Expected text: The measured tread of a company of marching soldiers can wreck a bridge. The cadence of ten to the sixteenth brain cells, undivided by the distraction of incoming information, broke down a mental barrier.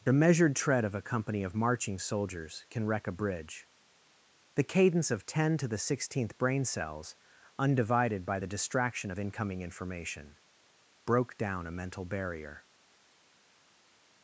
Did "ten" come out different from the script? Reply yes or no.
no